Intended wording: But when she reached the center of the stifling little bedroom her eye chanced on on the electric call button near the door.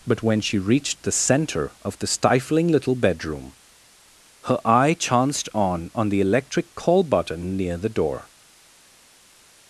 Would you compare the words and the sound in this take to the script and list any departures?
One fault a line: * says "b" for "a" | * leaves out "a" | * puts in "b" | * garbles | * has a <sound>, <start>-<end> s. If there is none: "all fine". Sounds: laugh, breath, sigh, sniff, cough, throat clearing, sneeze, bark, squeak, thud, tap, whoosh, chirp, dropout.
all fine